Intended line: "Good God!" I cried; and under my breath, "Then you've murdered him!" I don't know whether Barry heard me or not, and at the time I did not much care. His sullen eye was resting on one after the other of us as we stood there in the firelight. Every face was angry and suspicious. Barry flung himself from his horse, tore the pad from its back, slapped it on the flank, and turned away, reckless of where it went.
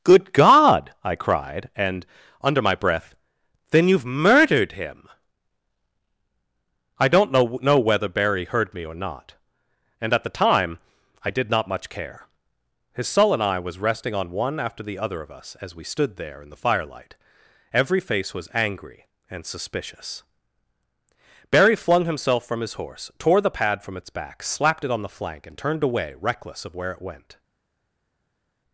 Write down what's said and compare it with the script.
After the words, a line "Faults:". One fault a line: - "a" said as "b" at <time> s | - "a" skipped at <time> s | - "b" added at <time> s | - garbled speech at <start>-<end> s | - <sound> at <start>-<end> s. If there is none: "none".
"Good God!" I cried; and under my breath, "Then you've murdered him!" I don't know know whether Barry heard me or not, and at the time I did not much care. His sullen eye was resting on one after the other of us as we stood there in the firelight. Every face was angry and suspicious. Barry flung himself from his horse, tore the pad from its back, slapped it on the flank, and turned away, reckless of where it went.
Faults:
- "know" added at 7.6 s